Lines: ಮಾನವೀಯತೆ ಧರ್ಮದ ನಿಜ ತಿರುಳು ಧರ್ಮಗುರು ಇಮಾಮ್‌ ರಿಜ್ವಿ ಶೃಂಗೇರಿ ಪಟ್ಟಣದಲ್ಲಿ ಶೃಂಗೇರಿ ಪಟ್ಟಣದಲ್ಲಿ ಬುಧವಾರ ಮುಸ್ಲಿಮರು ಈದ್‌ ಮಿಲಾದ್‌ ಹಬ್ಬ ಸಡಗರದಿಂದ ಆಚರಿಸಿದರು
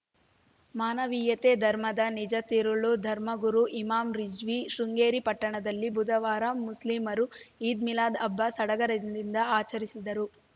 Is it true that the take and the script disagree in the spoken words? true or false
true